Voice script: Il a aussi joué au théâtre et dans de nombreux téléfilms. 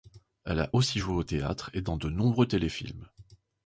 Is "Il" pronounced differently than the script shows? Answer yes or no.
yes